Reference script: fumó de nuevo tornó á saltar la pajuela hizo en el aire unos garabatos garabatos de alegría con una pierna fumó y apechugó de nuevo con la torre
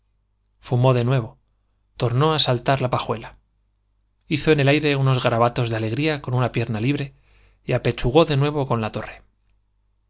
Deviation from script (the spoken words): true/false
true